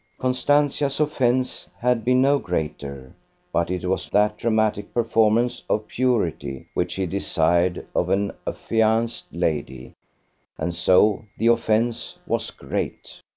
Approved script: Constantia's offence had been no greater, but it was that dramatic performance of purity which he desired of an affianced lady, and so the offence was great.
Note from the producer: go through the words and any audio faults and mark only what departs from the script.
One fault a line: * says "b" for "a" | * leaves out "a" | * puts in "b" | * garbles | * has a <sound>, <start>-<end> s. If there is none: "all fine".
all fine